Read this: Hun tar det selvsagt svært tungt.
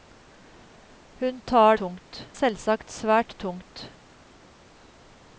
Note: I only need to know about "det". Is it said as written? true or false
false